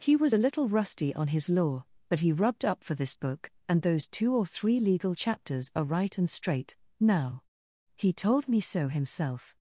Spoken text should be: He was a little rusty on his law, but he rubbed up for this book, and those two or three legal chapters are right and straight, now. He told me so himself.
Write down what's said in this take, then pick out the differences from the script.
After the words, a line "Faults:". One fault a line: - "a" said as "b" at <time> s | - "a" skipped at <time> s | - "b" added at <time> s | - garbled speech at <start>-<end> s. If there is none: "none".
He was a little rusty on his law, but he rubbed up for this book, and those two or three legal chapters are right and straight, now. He told me so himself.
Faults:
none